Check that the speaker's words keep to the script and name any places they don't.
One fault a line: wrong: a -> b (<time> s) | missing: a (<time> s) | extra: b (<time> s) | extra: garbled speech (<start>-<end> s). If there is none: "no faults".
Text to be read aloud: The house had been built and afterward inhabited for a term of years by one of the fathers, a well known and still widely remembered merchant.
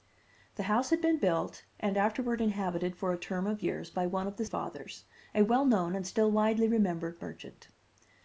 no faults